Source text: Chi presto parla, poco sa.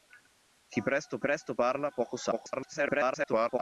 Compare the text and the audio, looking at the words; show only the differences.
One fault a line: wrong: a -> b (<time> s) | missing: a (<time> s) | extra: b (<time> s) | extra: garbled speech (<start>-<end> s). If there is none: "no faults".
extra: presto (1.2 s)
extra: garbled speech (2.3-3.6 s)